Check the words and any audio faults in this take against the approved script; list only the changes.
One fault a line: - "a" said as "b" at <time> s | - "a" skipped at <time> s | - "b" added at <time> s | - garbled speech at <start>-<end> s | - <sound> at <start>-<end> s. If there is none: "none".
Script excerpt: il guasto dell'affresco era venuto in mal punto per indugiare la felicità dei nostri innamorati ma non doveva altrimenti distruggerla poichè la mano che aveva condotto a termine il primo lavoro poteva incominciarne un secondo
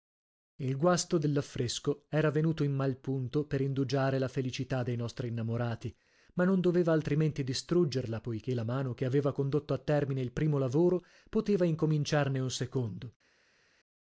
none